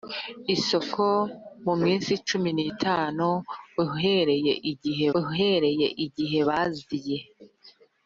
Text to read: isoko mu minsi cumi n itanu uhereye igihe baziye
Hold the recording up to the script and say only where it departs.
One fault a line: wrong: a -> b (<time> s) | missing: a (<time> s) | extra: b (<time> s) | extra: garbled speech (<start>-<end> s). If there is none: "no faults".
extra: uhereye igihe (5.2 s)